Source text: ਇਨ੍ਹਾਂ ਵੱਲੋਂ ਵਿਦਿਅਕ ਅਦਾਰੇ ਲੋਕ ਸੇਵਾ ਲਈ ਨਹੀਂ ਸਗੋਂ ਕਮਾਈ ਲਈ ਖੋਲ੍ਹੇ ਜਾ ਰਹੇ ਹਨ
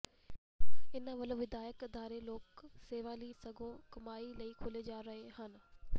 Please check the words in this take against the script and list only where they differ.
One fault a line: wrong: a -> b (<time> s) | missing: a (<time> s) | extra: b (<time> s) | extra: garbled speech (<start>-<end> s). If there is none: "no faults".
missing: ਨਹੀਂ (3.3 s)